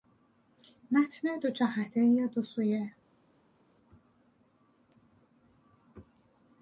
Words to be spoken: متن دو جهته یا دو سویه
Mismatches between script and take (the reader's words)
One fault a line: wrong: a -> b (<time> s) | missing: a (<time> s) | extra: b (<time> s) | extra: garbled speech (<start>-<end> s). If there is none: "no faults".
no faults